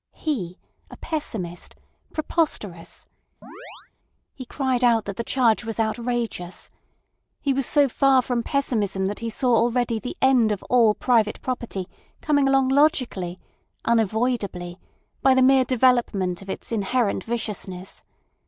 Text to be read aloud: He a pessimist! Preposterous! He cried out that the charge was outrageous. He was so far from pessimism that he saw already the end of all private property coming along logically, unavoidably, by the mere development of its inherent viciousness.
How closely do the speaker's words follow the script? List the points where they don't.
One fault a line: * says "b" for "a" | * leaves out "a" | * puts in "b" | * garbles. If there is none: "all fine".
all fine